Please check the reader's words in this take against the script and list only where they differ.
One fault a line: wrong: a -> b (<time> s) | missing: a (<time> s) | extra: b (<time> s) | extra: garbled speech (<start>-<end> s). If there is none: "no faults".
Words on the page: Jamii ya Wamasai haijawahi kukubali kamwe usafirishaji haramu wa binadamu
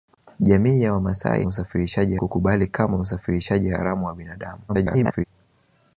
wrong: haijawahi -> usafirishaji (1.5 s)
extra: garbled speech (4.7-5.2 s)